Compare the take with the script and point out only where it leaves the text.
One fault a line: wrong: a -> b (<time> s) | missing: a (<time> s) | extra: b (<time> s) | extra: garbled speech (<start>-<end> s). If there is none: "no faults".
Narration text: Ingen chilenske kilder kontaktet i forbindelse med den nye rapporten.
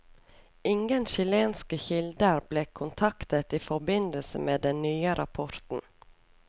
extra: ble (2.5 s)